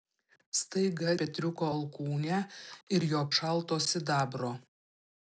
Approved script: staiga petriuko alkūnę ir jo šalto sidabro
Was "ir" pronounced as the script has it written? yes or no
yes